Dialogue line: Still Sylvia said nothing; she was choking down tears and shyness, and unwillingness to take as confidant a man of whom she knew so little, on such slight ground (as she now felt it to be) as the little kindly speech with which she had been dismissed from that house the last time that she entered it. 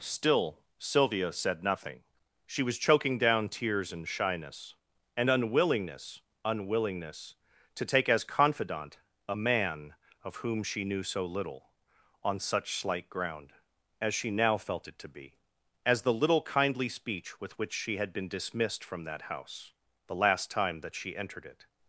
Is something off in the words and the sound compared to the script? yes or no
yes